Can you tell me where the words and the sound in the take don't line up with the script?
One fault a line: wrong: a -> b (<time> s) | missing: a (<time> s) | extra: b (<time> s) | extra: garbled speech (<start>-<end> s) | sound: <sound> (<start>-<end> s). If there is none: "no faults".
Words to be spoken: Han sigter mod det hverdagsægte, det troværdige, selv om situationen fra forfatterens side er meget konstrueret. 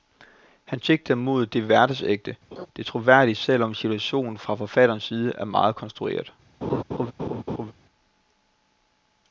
sound: laugh (2.5-2.7 s)
sound: laugh (6.6-7.7 s)